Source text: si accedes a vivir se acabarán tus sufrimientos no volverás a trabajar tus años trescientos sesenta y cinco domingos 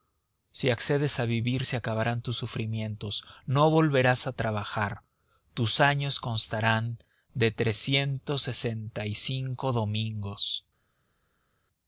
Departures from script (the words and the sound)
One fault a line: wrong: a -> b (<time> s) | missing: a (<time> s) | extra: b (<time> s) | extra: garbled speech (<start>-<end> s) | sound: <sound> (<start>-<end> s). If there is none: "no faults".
extra: constarán de (6.2 s)